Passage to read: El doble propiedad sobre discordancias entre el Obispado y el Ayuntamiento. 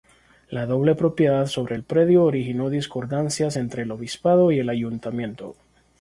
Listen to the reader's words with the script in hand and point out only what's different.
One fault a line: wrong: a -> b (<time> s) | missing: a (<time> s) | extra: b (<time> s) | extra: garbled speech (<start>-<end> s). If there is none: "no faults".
wrong: El -> La (0.5 s)
extra: el predio originó (1.7 s)